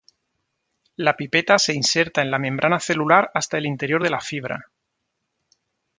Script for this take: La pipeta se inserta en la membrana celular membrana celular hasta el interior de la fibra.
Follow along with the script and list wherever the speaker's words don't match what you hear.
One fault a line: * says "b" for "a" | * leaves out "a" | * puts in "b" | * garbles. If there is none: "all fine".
* leaves out "membrana celular"